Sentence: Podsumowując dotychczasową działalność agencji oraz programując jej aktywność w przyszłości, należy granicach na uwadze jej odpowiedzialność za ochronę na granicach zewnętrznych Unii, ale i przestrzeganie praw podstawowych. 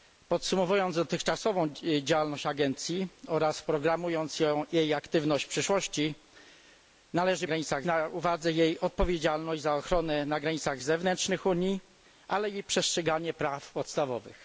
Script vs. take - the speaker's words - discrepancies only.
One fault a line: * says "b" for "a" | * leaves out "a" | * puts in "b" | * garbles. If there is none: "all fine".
all fine